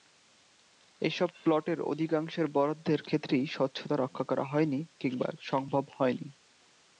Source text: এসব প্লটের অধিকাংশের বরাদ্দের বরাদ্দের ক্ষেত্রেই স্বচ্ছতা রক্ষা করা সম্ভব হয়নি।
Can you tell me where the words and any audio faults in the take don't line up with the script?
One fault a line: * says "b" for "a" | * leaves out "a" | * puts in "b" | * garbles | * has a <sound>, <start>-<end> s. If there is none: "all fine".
* leaves out "বরাদ্দের"
* puts in "হয়নি কিংবা"